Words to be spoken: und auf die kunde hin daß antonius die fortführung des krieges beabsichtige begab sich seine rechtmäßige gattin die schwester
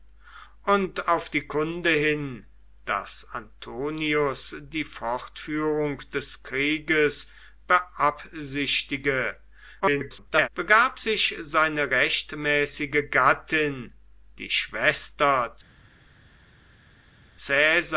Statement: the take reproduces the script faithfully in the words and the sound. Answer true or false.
false